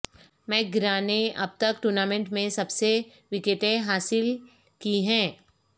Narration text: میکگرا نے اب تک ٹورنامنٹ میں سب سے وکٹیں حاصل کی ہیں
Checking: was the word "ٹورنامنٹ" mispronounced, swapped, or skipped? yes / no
no